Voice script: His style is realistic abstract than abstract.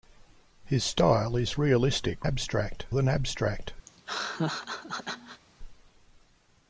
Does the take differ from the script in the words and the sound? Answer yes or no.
yes